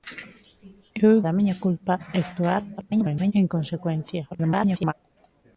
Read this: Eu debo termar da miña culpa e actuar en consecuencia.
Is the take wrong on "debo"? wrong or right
wrong